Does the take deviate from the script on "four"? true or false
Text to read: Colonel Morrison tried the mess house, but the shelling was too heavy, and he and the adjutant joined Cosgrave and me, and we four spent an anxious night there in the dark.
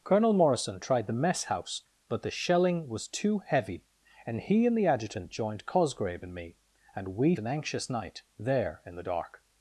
true